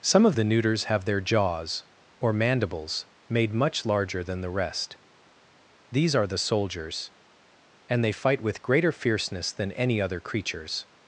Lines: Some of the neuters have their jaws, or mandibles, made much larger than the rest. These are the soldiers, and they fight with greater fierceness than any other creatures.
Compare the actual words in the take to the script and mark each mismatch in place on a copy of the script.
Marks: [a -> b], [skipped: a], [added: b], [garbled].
Some of the neuters have their jaws, or mandibles, made much larger than the rest. These are the soldiers, and they fight with greater fierceness than any other creatures.